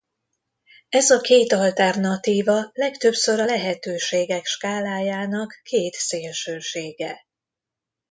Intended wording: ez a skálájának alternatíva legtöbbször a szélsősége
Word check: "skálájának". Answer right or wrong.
wrong